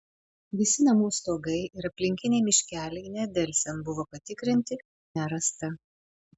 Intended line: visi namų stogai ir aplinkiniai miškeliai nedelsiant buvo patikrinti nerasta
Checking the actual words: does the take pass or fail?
pass